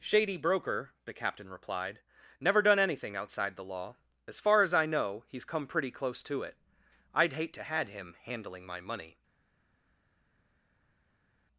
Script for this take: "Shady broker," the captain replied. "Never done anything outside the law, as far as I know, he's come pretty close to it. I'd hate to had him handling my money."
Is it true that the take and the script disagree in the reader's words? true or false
false